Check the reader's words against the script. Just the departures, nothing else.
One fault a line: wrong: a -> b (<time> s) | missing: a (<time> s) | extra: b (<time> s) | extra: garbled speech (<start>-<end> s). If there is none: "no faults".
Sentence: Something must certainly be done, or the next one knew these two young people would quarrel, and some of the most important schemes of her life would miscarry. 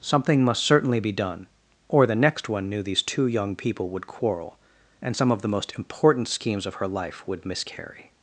no faults